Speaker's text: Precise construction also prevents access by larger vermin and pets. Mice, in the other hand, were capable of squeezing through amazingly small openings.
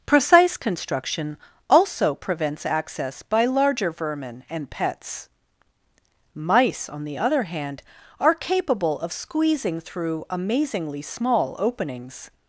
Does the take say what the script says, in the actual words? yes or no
no